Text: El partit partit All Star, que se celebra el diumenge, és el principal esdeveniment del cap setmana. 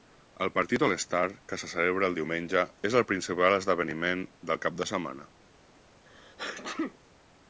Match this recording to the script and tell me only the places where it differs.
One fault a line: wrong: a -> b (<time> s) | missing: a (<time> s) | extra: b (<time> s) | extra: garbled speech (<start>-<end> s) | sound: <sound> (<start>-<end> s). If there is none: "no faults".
missing: partit (0.8 s)
extra: de (4.8 s)
sound: sneeze (6.1-7.0 s)